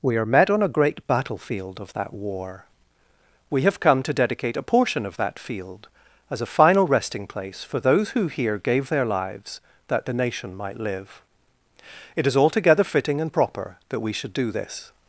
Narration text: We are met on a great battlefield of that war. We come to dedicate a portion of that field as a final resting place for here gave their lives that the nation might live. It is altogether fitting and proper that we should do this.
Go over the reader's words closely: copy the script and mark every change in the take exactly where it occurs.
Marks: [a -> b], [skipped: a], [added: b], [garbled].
We are met on a great battlefield of that war. We [added: have] come to dedicate a portion of that field as a final resting place for [added: those who] here gave their lives that the nation might live. It is altogether fitting and proper that we should do this.